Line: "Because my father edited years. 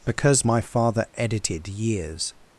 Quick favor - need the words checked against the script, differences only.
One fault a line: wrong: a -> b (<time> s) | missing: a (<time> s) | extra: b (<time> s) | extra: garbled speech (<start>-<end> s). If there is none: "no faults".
no faults